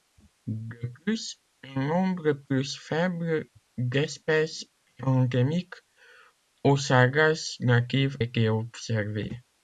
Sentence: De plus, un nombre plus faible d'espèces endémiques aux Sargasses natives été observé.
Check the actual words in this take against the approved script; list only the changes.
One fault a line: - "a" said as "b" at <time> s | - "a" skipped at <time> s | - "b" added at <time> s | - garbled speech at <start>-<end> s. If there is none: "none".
none